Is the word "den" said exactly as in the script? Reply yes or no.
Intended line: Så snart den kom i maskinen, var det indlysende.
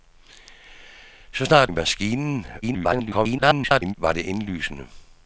no